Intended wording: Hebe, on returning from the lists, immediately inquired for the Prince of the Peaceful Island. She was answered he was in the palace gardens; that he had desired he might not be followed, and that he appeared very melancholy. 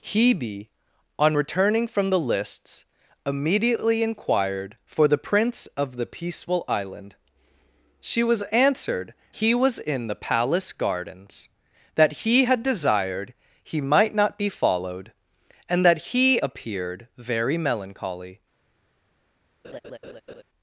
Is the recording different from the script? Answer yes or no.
no